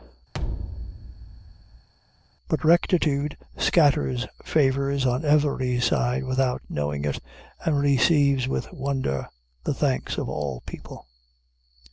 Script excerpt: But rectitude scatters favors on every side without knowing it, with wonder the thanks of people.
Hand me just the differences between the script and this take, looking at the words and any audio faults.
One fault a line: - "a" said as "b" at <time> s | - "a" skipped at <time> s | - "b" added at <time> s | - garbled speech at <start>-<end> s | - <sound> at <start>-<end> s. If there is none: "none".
- thud at 0.3-1.9 s
- "and receives" added at 7.6 s
- "all" added at 10.3 s